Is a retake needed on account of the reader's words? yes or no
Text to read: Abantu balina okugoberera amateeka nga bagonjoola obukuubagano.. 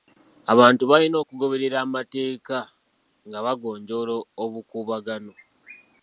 no